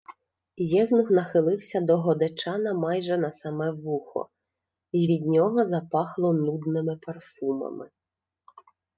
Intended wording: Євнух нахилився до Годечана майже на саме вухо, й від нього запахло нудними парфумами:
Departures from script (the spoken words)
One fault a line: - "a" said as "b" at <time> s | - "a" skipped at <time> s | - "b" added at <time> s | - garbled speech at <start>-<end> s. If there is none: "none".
none